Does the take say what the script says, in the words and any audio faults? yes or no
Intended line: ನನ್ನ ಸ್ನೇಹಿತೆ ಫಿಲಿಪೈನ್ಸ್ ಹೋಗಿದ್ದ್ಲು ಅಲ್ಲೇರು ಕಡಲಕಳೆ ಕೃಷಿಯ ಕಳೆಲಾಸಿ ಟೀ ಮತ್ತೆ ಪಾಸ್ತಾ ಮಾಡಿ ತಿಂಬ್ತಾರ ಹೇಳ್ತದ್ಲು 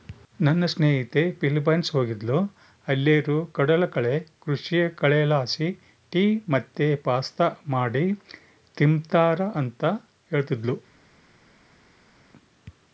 no